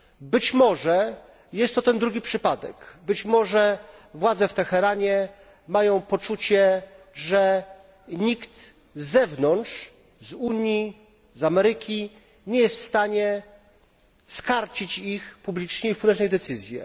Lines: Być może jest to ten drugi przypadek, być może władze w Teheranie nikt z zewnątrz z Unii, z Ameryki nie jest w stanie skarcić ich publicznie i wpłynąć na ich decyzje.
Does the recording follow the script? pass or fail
fail